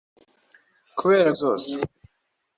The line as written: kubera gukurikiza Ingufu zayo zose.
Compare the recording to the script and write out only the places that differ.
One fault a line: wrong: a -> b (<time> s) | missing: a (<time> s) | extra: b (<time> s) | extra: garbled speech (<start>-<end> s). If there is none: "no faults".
missing: gukurikiza Ingufu zayo (1.3 s)